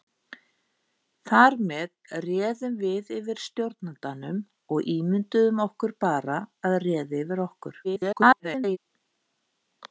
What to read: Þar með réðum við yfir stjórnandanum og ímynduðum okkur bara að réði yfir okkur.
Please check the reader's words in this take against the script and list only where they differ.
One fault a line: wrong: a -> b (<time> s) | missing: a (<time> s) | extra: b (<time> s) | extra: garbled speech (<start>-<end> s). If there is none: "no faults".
extra: garbled speech (7.8-8.8 s)